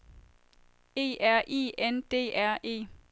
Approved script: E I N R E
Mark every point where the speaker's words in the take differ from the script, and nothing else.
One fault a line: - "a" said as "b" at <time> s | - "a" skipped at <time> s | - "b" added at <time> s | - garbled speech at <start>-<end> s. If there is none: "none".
- "R" added at 1.2 s
- "D" added at 2.1 s